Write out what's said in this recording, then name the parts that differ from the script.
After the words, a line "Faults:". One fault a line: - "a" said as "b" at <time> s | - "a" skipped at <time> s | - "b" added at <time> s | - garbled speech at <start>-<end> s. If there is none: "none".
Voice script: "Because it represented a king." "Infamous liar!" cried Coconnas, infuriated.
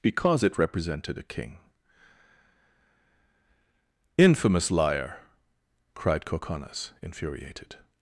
"Because it represented a king." "Infamous liar!" cried Coconnas, infuriated.
Faults:
none